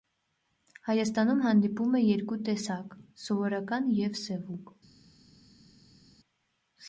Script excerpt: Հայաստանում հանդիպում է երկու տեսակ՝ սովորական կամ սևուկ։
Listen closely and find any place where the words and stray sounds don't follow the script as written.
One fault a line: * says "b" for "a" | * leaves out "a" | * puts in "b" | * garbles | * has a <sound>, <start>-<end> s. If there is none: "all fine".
* says "և" for "կամ"